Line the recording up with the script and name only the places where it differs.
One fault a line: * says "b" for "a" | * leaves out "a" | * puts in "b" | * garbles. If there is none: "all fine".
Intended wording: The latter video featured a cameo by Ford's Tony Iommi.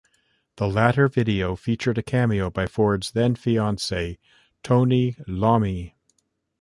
* puts in "then fiancee"